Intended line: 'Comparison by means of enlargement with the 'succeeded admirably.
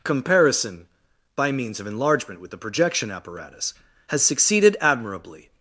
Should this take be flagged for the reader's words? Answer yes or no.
yes